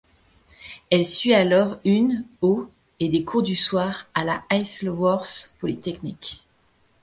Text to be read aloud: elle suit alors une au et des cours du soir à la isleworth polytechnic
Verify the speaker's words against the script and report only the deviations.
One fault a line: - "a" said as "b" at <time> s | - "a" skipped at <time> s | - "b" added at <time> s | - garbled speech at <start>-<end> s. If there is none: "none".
none